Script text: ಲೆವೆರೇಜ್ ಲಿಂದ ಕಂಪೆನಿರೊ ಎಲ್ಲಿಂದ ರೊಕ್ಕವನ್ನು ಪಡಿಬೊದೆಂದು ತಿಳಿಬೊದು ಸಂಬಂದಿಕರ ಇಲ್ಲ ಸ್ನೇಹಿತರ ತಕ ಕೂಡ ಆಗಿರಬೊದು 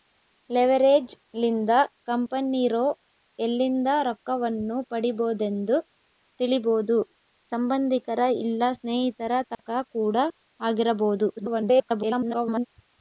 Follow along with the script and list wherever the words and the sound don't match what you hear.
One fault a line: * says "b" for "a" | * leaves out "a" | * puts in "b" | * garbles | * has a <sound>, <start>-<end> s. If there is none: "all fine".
* has a dropout, 9.5-9.6 s
* garbles